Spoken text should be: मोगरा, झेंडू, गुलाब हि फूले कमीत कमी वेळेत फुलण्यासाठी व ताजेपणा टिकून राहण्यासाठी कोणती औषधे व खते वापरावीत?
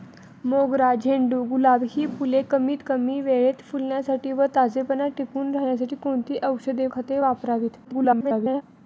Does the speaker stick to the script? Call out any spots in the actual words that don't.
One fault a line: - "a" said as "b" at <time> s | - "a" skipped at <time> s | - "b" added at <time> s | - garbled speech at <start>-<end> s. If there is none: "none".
- "व" skipped at 6.9 s
- garbled speech at 7.8-8.6 s